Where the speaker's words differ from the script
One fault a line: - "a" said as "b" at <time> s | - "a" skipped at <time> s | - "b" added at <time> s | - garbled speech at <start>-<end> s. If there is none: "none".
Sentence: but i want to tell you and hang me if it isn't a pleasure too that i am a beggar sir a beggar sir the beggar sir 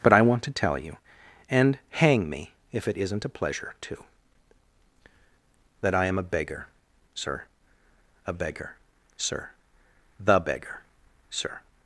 none